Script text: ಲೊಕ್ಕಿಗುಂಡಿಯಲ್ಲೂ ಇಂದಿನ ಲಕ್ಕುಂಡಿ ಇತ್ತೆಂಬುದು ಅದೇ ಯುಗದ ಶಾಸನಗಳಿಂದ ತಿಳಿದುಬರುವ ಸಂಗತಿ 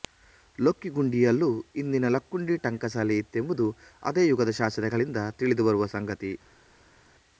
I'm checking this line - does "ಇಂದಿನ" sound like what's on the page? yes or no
yes